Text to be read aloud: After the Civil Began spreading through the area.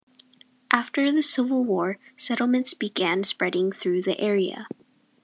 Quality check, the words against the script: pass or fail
fail